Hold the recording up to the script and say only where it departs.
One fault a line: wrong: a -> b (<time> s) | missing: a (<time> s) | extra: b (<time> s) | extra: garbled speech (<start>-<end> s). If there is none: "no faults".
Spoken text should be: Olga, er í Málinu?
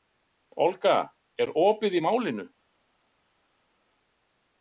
extra: opið (1.6 s)